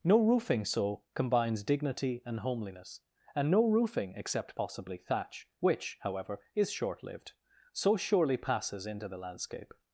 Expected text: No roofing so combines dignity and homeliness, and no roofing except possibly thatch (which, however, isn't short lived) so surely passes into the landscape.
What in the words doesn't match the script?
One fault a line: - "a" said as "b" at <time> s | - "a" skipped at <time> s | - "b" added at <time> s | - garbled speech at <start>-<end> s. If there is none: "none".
- "isn't" said as "is" at 6.6 s